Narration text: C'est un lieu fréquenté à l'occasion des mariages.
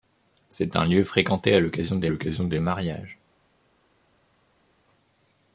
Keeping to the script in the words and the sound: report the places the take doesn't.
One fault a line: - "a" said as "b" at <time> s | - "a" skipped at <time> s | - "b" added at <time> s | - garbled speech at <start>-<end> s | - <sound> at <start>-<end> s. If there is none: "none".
- "l'occasion des" added at 2.1 s